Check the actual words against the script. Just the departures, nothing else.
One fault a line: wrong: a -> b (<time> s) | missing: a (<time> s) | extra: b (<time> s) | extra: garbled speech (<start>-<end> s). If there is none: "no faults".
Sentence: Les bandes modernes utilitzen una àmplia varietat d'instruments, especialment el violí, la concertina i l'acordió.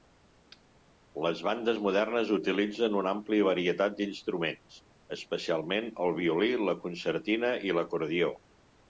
no faults